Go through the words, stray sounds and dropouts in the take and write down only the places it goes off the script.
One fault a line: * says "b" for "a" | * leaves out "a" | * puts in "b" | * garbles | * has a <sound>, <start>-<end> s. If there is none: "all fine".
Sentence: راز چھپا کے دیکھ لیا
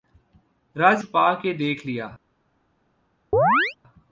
* has a chirp, 3.3-3.8 s